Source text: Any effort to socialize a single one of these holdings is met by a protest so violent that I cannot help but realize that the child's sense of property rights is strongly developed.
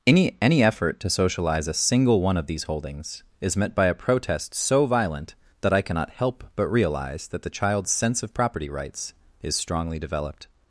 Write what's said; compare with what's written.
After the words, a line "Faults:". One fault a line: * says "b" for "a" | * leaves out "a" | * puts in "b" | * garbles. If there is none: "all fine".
Any any effort to socialize a single one of these holdings is met by a protest so violent that I cannot help but realize that the child's sense of property rights is strongly developed.
Faults:
* puts in "any"